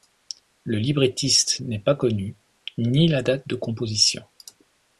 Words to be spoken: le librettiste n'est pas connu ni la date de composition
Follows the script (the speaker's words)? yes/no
yes